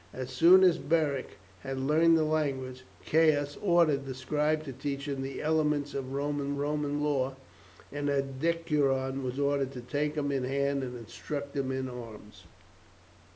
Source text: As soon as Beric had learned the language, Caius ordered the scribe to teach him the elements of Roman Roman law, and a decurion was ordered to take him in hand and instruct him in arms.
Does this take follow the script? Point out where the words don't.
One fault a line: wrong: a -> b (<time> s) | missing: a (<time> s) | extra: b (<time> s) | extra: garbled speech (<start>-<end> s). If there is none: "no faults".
no faults